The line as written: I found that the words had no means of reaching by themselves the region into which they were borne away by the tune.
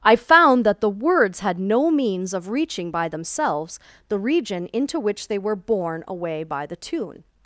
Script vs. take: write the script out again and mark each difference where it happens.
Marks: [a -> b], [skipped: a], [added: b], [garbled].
I found that the words had no means of reaching by themselves the region into which they were borne away by the tune.